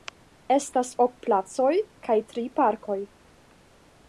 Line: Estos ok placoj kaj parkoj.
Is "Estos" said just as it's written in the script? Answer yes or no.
no